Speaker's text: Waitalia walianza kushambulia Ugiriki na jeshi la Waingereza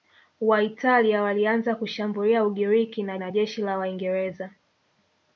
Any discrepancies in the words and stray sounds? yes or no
yes